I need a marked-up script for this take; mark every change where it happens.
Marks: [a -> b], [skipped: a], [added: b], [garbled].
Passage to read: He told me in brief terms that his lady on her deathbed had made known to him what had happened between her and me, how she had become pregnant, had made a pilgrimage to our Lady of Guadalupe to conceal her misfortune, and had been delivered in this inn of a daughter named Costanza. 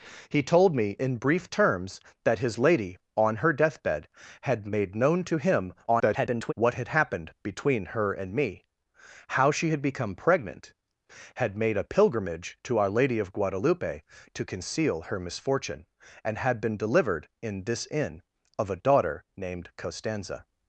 He told me in brief terms that his lady on her deathbed had made known to him [garbled] what had happened between her and me, how she had become pregnant, had made a pilgrimage to our Lady of Guadalupe to conceal her misfortune, and had been delivered in this inn of a daughter named Costanza.